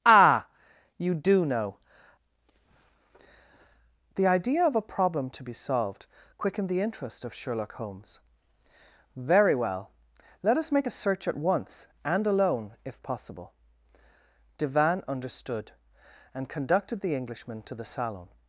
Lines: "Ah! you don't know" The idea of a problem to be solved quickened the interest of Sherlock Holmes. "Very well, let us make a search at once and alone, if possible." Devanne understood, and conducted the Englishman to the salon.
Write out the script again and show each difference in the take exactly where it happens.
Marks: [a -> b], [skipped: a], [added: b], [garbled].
"Ah! you [don't -> do] know" The idea of a problem to be solved quickened the interest of Sherlock Holmes. "Very well, let us make a search at once and alone, if possible." Devanne understood, and conducted the Englishman to the salon.